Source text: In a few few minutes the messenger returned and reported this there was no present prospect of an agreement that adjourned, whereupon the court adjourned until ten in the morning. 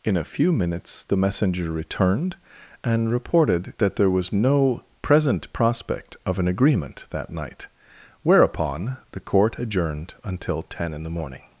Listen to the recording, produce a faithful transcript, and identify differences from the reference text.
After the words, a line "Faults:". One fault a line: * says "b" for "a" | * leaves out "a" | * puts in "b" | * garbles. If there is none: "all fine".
In a few minutes the messenger returned and reported that there was no present prospect of an agreement that night, whereupon the court adjourned until ten in the morning.
Faults:
* leaves out "few"
* says "that" for "this"
* says "night" for "adjourned"